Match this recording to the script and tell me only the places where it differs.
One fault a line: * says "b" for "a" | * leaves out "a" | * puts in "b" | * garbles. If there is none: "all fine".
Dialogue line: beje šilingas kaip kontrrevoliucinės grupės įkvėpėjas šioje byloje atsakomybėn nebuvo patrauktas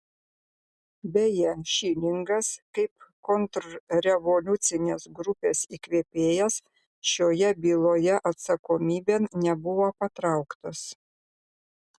all fine